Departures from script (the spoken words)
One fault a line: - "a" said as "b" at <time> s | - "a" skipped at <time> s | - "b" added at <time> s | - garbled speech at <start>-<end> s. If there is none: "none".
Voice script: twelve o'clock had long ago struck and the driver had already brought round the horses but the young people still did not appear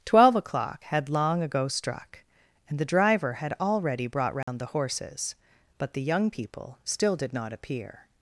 none